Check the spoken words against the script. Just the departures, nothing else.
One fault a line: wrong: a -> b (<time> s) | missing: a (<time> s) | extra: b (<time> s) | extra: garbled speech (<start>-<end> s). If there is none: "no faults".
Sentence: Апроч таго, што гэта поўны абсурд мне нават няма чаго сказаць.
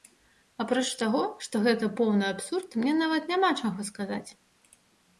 no faults